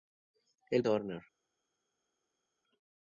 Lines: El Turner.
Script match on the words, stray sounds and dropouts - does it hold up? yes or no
yes